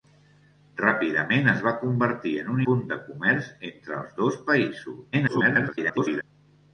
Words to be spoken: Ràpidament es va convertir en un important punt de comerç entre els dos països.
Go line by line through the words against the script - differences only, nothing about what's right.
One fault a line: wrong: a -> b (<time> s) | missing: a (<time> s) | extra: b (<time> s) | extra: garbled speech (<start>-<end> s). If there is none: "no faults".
missing: important (2.6 s)
extra: garbled speech (5.1-6.2 s)